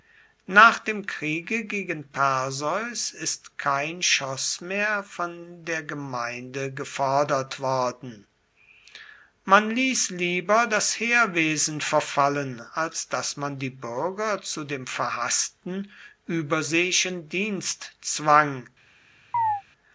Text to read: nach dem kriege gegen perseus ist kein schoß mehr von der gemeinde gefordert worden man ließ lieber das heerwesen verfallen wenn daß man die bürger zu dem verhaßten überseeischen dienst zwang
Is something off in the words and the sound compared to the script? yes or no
yes